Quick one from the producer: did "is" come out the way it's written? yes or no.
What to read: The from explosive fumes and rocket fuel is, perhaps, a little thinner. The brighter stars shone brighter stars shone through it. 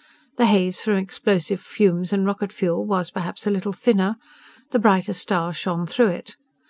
no